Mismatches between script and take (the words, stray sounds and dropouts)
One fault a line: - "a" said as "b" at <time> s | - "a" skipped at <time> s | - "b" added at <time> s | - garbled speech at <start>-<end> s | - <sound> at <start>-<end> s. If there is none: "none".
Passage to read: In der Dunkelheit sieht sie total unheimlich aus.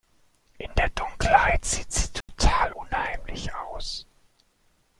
- dropout at 2.2-2.3 s